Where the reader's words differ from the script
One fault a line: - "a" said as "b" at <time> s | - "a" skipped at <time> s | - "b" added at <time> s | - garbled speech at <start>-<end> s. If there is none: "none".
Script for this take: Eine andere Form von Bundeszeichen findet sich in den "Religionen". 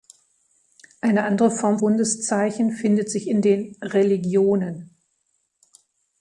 - "von" skipped at 1.8 s